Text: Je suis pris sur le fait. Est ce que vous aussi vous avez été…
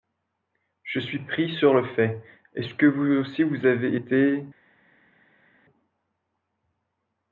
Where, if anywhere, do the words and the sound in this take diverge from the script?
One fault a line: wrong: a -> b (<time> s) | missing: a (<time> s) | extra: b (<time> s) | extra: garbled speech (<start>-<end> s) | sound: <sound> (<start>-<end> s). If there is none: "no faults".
no faults